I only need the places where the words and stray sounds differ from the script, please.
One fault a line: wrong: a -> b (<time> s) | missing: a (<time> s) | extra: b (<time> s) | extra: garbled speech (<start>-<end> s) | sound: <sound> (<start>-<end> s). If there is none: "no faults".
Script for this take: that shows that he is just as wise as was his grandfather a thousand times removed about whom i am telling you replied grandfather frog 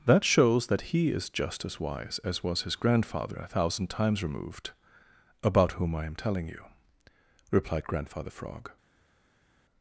no faults